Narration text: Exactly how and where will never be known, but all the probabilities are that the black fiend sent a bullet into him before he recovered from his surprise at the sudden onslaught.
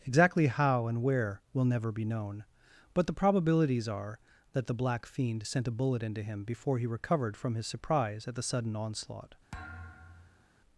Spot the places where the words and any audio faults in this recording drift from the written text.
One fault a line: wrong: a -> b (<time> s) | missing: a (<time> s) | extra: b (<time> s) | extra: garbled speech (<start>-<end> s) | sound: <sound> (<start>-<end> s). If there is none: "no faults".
missing: all (3.0 s)
sound: thud (9.5-10.5 s)